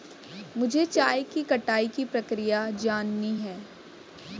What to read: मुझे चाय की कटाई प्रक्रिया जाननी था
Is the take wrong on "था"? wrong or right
wrong